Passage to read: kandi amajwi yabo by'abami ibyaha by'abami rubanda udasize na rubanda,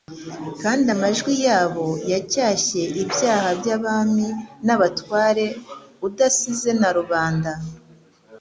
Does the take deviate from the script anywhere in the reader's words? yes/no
yes